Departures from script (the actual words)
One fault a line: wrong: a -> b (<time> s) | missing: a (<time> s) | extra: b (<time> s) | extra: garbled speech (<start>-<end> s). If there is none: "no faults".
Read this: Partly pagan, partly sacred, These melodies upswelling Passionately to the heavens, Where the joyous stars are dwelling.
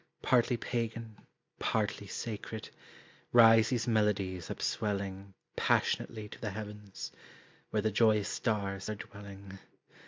extra: Rise (3.3 s)